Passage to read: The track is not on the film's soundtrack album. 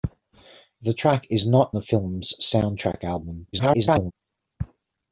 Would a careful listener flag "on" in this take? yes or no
yes